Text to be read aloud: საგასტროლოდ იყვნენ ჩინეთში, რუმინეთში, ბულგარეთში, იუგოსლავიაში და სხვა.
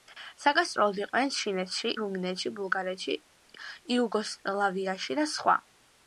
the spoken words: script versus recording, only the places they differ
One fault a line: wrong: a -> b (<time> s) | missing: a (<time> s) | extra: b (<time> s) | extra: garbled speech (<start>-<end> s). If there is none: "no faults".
no faults